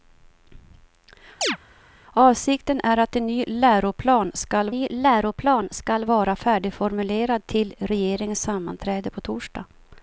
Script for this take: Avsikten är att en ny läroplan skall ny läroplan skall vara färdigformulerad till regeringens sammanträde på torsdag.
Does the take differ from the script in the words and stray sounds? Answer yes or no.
yes